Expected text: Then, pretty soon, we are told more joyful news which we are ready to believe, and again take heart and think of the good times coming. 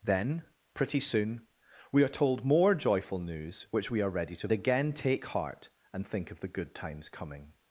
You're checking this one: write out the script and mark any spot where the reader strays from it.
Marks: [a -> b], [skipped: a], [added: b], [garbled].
Then, pretty soon, we are told more joyful news which we are ready to [skipped: believe, and] again take heart and think of the good times coming.